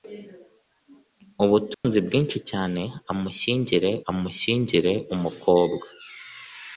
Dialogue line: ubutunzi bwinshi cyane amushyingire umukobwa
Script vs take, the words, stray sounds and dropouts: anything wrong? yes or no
yes